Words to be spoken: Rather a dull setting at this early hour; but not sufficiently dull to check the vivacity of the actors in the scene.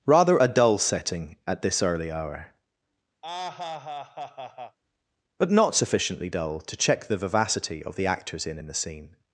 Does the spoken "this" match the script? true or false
true